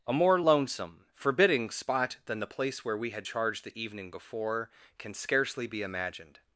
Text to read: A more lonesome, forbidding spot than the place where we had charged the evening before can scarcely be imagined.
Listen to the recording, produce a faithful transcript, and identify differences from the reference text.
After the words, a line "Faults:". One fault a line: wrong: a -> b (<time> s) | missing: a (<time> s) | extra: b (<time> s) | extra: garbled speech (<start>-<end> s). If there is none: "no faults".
A more lonesome, forbidding spot than the place where we had charged the evening before can scarcely be imagined.
Faults:
no faults